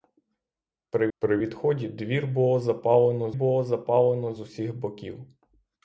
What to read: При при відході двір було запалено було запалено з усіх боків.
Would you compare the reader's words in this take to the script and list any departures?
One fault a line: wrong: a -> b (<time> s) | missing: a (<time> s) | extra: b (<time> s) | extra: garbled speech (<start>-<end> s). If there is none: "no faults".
no faults